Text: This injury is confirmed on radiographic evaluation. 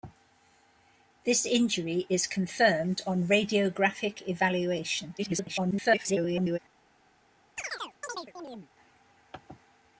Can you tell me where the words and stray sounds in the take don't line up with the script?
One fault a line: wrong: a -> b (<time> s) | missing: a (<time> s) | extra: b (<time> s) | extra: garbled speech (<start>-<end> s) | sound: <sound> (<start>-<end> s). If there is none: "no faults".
extra: garbled speech (5.2-6.6 s)
sound: chirp (7.6-8.7 s)